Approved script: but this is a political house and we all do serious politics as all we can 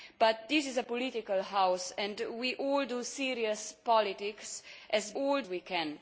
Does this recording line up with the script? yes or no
yes